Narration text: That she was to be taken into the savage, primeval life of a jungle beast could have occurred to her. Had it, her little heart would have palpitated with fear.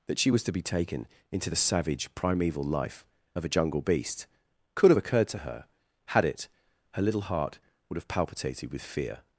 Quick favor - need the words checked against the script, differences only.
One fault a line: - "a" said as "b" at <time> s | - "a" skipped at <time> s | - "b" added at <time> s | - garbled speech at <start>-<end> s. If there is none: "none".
none